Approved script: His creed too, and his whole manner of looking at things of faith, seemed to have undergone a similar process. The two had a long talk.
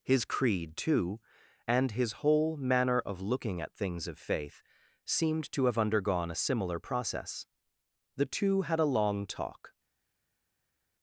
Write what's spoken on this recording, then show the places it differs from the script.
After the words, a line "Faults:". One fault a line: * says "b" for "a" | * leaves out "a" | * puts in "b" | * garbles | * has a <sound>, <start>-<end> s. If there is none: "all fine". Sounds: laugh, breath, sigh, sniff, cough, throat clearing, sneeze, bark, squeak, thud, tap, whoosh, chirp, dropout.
His creed too, and his whole manner of looking at things of faith, seemed to have undergone a similar process. The two had a long talk.
Faults:
all fine